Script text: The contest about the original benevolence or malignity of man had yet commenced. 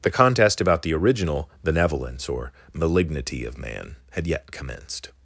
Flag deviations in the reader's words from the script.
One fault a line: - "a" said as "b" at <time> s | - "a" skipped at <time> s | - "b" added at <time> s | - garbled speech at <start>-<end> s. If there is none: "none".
none